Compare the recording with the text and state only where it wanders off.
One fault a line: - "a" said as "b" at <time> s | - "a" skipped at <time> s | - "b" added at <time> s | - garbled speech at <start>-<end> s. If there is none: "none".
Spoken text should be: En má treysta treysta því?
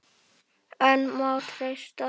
- "treysta" skipped at 1.9 s